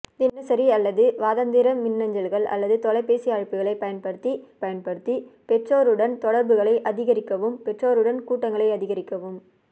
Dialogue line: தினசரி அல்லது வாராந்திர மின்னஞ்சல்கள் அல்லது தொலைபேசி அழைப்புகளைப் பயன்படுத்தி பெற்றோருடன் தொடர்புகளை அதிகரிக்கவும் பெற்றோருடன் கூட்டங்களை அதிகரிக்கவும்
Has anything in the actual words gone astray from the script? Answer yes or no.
yes